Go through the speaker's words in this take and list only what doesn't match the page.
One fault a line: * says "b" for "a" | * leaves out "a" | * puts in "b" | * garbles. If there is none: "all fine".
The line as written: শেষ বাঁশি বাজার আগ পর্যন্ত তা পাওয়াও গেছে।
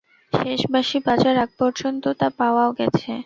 all fine